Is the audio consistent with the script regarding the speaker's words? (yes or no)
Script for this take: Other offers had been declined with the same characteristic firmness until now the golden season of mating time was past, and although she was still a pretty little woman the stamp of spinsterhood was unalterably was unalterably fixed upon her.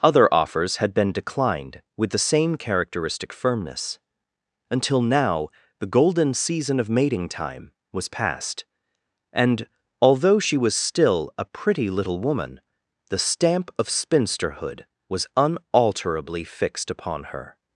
no